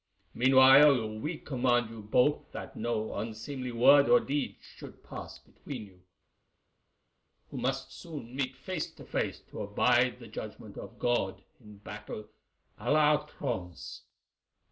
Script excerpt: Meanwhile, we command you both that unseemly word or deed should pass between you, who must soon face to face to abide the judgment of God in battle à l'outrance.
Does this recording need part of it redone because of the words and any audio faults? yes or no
yes